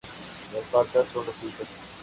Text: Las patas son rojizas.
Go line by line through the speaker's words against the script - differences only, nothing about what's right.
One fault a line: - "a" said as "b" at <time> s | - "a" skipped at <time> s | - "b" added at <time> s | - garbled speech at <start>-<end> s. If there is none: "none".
none